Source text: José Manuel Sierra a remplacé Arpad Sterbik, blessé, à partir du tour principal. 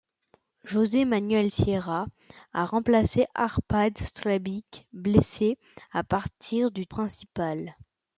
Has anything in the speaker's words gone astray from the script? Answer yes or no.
yes